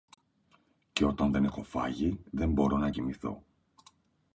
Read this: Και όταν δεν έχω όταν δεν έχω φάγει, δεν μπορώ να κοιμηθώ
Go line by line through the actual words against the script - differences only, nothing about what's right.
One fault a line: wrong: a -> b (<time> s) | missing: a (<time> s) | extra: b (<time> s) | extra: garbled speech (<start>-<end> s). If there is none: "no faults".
missing: όταν δεν έχω (1.6 s)